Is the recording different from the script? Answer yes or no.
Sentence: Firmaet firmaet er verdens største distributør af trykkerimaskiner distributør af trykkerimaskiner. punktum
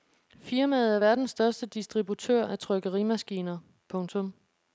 yes